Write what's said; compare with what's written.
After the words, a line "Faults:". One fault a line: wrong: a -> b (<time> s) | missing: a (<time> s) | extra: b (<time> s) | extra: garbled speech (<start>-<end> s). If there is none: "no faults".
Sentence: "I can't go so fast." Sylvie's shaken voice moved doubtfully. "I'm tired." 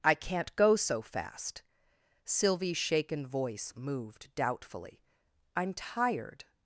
"I can't go so fast." Sylvie's shaken voice moved doubtfully. "I'm tired."
Faults:
no faults